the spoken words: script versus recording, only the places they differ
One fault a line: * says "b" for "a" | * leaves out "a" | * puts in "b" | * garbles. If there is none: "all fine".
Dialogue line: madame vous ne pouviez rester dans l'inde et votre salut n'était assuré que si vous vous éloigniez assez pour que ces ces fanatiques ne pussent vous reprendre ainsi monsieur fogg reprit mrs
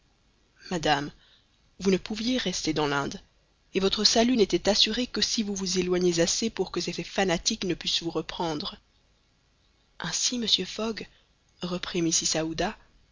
all fine